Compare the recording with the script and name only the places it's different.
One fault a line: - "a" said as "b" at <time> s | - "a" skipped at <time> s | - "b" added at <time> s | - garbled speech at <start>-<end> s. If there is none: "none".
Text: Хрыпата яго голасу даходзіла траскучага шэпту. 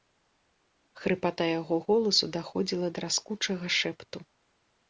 none